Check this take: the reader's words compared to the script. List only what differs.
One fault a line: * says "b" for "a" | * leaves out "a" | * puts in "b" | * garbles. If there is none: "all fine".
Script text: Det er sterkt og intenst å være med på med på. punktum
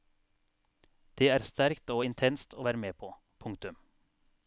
* leaves out "med på"